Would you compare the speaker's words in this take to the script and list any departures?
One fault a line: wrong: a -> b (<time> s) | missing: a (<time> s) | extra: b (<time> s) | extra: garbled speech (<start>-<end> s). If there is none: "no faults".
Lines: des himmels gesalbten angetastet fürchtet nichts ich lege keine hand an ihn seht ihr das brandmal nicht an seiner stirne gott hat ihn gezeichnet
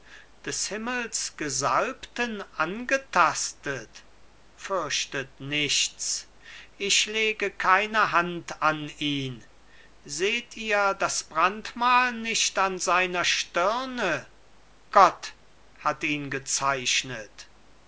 no faults